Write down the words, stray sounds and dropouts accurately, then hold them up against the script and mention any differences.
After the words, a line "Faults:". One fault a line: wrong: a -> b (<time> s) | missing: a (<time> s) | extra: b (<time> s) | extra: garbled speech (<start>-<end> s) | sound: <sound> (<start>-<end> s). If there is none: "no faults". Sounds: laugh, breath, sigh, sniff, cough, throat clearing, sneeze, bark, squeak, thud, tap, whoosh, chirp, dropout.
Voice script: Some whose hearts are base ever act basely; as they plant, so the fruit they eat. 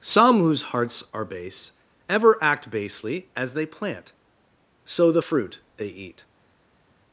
Some whose hearts are base ever act basely; as they plant, so the fruit they eat.
Faults:
no faults